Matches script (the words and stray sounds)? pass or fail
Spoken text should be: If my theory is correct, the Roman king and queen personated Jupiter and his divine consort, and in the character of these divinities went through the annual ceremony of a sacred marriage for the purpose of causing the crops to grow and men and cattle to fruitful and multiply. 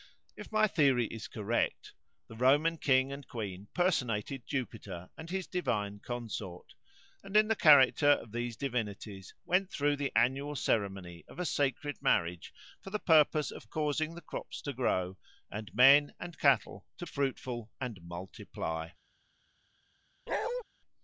fail